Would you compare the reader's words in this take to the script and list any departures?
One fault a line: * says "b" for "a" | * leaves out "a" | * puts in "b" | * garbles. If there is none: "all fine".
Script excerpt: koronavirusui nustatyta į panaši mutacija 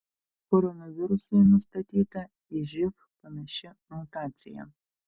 * puts in "živ"